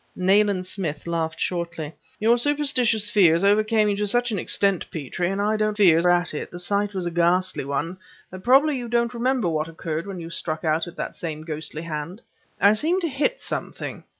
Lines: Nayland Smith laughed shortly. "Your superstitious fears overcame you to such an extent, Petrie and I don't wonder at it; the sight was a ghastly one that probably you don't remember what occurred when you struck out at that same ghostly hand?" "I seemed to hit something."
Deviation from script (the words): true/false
true